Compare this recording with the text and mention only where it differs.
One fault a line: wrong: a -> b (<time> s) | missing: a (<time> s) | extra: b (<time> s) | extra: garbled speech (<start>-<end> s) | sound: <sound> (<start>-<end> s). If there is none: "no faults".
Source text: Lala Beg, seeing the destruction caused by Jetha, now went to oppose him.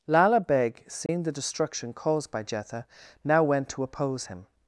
sound: dropout (1.1-1.1 s)